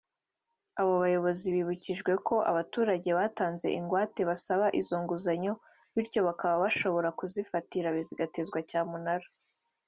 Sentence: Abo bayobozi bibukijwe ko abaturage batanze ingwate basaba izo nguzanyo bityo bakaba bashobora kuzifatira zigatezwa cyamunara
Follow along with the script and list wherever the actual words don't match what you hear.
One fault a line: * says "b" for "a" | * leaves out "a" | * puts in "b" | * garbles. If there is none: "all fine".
all fine